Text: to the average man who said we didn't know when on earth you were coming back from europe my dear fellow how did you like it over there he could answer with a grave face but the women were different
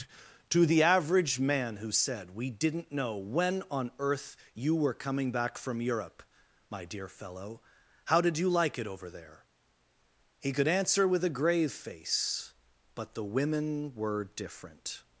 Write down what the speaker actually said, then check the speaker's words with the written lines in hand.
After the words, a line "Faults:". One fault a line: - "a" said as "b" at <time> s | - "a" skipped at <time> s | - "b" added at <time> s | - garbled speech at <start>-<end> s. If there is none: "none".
to the average man who said we didn't know when on earth you were coming back from europe my dear fellow how did you like it over there he could answer with a grave face but the women were different
Faults:
none